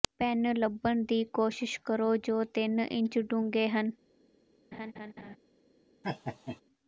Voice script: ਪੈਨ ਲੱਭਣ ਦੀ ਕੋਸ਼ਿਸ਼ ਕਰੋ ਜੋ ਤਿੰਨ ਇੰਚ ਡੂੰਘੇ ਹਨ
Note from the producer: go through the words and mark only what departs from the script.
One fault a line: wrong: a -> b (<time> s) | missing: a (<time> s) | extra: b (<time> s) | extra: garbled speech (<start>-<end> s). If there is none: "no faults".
no faults